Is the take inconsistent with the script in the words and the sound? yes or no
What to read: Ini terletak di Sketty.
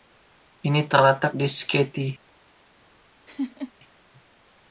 yes